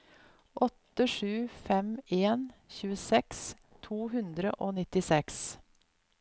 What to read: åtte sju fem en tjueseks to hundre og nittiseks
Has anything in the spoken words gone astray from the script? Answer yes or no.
no